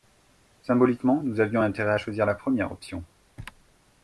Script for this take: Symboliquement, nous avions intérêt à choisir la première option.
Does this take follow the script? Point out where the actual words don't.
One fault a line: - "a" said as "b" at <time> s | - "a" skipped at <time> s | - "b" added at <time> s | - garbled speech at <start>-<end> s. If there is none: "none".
none